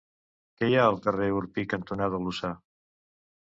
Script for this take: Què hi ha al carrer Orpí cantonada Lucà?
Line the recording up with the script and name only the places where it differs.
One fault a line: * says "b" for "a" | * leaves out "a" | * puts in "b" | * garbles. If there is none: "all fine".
all fine